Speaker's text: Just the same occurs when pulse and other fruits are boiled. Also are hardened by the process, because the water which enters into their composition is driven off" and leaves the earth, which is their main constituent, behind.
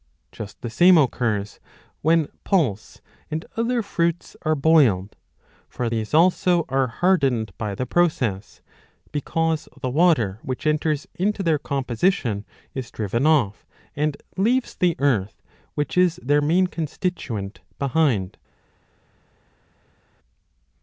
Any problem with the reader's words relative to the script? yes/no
yes